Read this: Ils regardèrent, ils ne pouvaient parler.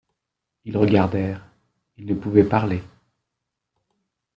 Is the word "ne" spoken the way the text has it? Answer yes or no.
yes